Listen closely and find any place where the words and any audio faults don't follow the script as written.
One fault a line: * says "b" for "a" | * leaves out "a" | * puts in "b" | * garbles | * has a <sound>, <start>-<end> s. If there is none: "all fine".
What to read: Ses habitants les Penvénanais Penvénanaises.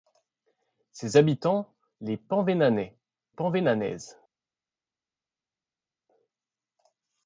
all fine